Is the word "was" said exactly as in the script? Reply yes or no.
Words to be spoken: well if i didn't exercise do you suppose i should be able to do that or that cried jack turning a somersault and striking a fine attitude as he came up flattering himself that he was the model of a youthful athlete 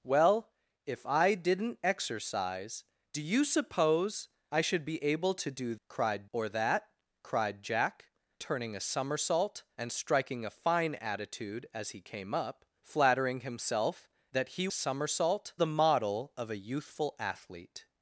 no